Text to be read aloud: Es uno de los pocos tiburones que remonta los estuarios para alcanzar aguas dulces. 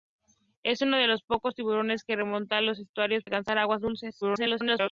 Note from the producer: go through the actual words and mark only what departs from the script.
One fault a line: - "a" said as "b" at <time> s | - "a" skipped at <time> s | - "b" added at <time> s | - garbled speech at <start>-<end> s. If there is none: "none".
- "para" skipped at 3.2 s
- garbled speech at 4.2-4.9 s